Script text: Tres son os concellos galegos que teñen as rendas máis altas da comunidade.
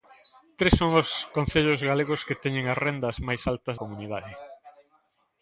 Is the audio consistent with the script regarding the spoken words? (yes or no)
no